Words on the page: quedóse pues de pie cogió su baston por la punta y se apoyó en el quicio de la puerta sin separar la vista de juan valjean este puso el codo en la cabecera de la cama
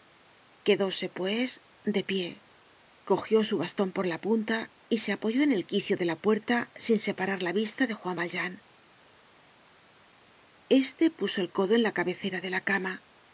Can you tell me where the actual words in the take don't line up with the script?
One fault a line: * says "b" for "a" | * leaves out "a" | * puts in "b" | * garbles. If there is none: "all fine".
all fine